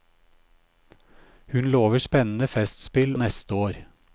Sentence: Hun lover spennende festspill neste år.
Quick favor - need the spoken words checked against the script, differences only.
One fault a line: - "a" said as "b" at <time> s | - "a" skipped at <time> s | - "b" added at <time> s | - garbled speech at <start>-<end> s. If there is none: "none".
none